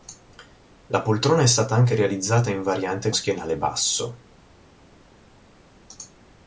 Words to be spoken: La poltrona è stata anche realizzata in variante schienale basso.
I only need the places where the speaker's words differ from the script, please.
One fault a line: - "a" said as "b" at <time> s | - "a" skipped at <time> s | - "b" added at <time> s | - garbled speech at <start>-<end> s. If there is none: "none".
none